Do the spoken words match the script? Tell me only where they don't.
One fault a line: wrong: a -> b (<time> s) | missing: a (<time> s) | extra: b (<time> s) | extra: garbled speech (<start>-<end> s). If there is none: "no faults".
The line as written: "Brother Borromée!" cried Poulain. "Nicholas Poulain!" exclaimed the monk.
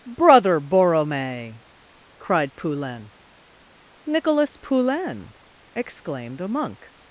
wrong: the -> a (6.4 s)